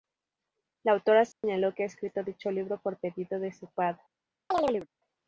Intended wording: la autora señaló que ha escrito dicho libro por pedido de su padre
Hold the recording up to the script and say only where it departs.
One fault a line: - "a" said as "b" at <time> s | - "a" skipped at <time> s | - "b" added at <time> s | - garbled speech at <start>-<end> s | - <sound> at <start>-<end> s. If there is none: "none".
- dropout at 1.3-1.4 s
- chirp at 4.5-4.9 s